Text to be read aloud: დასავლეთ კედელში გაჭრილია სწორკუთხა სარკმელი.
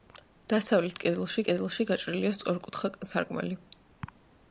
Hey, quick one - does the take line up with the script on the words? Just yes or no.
no